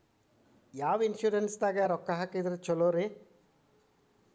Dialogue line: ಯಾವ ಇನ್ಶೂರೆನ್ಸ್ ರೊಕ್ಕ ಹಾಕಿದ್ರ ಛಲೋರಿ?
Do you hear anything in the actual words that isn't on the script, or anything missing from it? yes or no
yes